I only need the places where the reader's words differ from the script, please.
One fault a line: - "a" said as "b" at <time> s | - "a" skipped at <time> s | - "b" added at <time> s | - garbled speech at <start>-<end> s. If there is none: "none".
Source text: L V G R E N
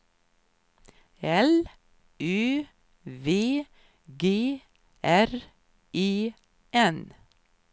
- "Ö" added at 2.2 s